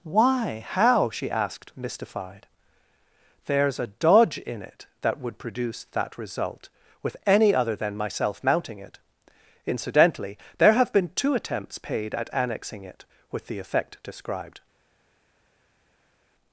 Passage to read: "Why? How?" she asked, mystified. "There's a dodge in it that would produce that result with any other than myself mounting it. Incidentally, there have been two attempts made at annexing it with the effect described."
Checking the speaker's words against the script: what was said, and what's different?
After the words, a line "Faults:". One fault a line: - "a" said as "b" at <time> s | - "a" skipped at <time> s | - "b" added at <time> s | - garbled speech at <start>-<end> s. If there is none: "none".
"Why? How?" she asked, mystified. "There's a dodge in it that would produce that result with any other than myself mounting it. Incidentally, there have been two attempts paid at annexing it with the effect described."
Faults:
- "made" said as "paid" at 11.8 s